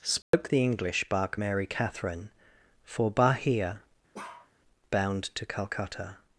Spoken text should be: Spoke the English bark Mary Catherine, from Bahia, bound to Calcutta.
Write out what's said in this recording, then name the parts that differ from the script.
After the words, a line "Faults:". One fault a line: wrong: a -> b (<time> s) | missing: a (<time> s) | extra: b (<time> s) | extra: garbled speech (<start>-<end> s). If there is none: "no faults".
Spoke the English bark Mary Catherine, for Bahia, bound to Calcutta.
Faults:
wrong: from -> for (2.8 s)